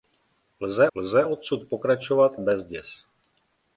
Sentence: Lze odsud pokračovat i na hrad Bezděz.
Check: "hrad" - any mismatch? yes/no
yes